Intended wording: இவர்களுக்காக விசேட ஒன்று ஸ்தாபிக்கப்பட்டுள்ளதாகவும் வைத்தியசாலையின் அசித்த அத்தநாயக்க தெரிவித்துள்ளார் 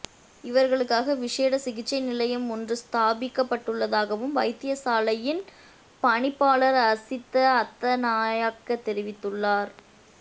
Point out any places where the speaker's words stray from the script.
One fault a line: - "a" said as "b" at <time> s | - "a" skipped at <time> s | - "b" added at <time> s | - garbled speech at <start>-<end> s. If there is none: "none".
- "சிகிச்சை நிலையம்" added at 1.6 s
- "பணிப்பாளர்" added at 6.0 s